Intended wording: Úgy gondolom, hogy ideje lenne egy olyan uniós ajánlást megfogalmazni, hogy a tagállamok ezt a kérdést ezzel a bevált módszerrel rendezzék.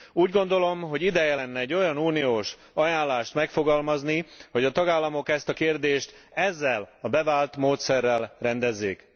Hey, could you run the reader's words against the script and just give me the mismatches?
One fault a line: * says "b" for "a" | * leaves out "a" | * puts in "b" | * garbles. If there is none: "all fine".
all fine